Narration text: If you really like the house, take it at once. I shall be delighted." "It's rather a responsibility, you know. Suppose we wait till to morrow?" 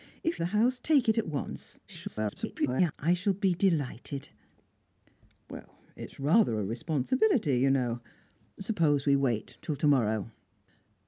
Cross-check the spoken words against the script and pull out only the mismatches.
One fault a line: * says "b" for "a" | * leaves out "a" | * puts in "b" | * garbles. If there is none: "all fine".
* leaves out "you really like"
* garbles